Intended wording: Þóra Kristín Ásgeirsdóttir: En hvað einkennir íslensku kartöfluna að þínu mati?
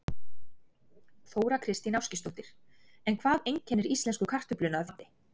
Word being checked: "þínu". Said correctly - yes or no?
no